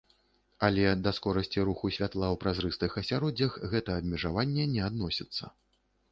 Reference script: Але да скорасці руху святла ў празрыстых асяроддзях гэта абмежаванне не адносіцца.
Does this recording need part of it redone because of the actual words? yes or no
no